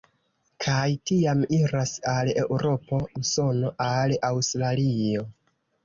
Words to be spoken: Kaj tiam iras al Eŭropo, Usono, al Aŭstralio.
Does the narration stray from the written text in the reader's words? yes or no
no